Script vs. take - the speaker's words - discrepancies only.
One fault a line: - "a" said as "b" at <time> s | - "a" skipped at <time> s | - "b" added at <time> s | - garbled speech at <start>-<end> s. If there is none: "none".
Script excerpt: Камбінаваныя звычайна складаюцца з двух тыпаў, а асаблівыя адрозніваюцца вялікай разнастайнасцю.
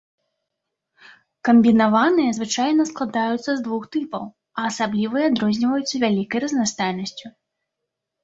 none